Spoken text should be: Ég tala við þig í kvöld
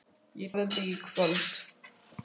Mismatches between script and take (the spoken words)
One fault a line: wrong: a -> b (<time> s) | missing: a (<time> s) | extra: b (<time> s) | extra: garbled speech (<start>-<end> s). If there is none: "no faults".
missing: tala (0.6 s)